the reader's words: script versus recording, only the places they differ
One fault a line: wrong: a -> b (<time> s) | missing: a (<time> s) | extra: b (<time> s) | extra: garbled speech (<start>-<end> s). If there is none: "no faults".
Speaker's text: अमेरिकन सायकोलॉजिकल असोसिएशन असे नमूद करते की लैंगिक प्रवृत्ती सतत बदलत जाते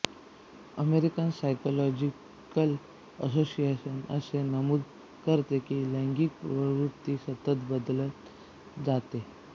no faults